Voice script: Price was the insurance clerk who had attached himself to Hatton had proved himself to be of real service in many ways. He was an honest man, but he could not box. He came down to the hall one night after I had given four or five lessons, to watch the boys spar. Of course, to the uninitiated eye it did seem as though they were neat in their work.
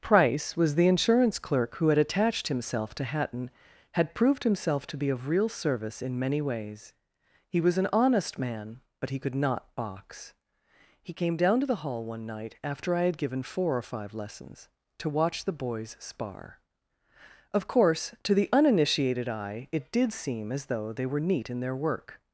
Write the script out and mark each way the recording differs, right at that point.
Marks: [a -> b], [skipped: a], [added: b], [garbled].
Price was the insurance clerk who had attached himself to Hatton had proved himself to be of real service in many ways. He was an honest man, but he could not box. He came down to the hall one night after I had given four or five lessons, to watch the boys spar. Of course, to the uninitiated eye it did seem as though they were neat in their work.